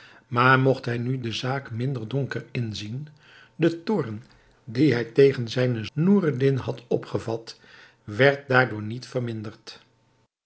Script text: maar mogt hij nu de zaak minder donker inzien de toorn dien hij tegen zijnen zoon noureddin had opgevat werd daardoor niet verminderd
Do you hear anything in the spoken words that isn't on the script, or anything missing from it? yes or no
yes